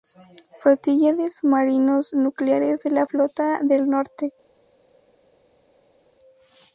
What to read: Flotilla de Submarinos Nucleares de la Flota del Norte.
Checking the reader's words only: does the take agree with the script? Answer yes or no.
yes